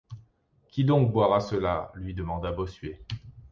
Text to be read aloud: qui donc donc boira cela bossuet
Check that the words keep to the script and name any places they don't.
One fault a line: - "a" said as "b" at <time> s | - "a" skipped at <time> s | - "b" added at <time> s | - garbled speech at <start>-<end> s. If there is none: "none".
- "donc" skipped at 1.1 s
- "lui demanda" added at 1.9 s